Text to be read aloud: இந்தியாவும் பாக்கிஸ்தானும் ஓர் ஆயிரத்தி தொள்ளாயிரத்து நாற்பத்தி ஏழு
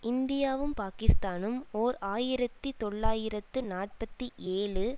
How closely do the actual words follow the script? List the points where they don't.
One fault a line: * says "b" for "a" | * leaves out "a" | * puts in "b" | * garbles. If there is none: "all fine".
all fine